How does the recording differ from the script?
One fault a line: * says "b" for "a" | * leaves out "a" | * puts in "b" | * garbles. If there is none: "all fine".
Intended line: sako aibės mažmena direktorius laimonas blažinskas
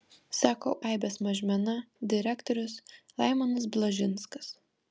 all fine